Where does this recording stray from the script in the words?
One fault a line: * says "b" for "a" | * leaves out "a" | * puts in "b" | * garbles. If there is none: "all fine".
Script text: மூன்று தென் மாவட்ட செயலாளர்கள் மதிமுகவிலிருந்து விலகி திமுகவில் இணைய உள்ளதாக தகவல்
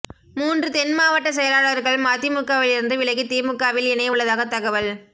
all fine